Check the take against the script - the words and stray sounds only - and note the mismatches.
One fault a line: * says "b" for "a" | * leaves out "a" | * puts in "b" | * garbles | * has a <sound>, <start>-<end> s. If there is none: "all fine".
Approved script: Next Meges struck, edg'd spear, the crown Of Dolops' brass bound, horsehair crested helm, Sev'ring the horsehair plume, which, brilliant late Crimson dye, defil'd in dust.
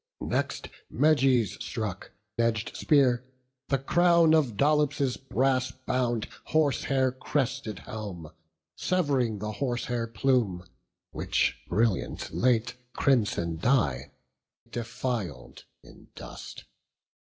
all fine